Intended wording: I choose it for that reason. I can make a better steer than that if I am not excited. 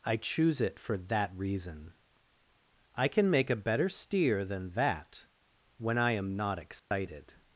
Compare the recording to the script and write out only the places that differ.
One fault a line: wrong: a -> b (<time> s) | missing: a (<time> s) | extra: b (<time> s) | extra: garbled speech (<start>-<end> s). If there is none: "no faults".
wrong: if -> when (5.8 s)